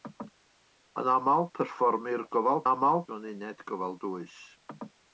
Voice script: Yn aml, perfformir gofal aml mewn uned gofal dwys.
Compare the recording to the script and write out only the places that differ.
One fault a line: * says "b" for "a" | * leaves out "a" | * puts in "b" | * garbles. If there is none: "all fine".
all fine